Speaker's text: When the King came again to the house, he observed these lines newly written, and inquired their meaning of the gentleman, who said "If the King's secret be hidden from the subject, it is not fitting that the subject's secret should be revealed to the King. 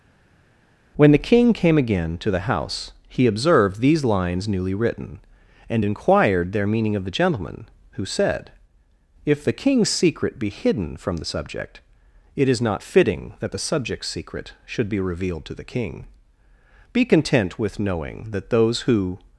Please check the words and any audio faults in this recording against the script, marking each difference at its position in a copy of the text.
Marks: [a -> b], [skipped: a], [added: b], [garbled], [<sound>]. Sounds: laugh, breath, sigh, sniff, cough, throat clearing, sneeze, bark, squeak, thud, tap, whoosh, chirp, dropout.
When the King came again to the house, he observed these lines newly written, and inquired their meaning of the gentleman, who said "If the King's secret be hidden from the subject, it is not fitting that the subject's secret should be revealed to the King. [added: Be content with knowing that those who]